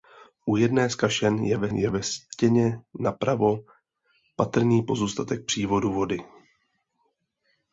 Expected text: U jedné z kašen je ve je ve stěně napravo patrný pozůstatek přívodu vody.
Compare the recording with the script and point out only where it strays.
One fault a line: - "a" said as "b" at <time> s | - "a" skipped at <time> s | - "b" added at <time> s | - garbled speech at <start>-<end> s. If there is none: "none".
none